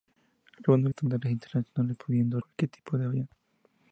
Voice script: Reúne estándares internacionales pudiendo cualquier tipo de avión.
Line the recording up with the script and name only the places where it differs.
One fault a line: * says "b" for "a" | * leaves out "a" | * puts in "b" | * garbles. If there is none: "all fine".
all fine